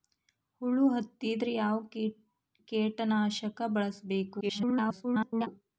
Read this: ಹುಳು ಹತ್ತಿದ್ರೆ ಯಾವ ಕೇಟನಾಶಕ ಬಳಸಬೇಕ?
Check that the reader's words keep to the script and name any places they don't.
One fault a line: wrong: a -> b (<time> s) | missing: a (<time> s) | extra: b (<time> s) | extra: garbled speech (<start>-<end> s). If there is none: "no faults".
extra: garbled speech (4.4-5.5 s)